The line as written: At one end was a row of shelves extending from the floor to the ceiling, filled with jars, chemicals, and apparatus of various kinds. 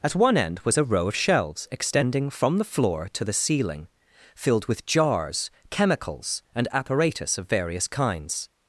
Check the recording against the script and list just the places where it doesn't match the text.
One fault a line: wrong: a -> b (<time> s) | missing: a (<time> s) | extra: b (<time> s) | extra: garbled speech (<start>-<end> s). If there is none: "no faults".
no faults